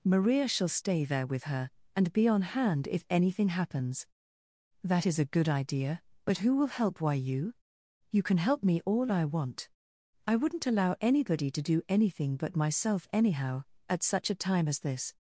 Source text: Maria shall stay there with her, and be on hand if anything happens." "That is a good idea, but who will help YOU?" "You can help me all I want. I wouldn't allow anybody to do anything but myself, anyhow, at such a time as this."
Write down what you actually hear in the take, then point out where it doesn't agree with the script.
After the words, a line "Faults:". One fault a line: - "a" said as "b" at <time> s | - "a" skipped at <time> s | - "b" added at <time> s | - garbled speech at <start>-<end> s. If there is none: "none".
Maria shall stay there with her, and be on hand if anything happens." "That is a good idea, but who will help why YOU?" "You can help me all I want. I wouldn't allow anybody to do anything but myself, anyhow, at such a time as this."
Faults:
- "why" added at 7.0 s